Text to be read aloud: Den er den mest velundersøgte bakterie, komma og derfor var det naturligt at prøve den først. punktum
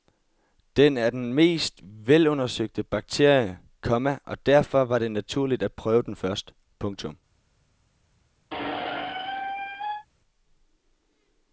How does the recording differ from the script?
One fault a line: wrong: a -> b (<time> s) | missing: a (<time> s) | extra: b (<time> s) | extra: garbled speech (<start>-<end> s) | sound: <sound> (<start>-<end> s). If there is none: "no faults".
sound: squeak (8.5-10.1 s)